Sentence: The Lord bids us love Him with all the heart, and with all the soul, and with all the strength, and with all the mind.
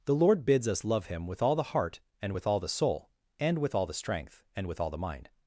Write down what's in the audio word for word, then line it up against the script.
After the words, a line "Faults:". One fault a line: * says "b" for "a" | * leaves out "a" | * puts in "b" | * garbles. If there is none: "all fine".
The Lord bids us love Him with all the heart, and with all the soul, and with all the strength, and with all the mind.
Faults:
all fine